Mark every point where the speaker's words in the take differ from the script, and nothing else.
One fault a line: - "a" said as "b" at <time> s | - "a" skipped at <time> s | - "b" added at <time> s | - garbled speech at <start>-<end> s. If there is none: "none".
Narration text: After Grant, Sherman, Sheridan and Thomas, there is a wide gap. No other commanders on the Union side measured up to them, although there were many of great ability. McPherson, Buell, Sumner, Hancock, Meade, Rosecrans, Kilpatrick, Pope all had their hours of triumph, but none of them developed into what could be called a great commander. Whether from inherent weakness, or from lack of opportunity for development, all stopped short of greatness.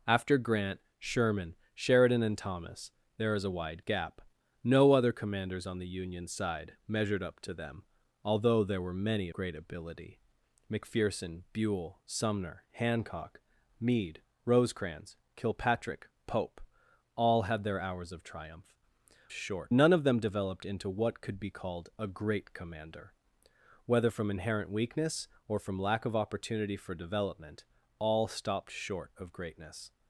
- "of" skipped at 9.3 s
- "but" said as "short" at 19.3 s